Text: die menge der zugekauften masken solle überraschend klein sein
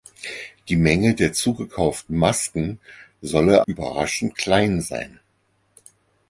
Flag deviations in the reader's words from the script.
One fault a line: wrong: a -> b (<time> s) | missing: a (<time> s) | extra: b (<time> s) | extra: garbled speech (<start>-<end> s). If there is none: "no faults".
no faults